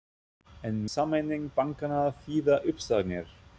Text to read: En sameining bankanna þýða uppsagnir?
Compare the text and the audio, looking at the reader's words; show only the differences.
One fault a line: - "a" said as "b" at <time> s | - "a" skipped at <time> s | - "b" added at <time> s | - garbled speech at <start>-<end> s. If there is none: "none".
none